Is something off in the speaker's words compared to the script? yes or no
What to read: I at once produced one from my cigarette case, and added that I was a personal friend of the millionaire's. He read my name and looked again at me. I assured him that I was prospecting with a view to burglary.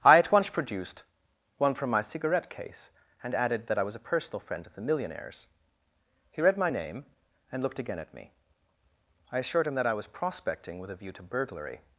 no